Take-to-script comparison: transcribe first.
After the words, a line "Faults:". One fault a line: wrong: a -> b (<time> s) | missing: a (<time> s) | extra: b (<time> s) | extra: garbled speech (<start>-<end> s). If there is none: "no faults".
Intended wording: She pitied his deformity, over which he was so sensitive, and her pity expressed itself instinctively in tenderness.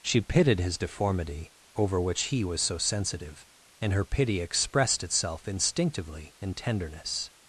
She pitied his deformity, over which he was so sensitive, and her pity expressed itself instinctively in tenderness.
Faults:
no faults